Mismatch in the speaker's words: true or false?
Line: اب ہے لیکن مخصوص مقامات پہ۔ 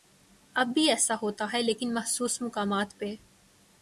true